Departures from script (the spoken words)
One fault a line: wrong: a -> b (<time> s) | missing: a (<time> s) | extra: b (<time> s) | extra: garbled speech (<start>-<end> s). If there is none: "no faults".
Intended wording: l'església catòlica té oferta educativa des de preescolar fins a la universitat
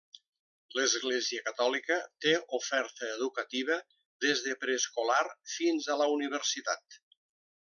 no faults